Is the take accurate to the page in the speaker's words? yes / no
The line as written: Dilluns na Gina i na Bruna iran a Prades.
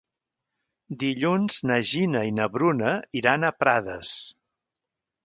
yes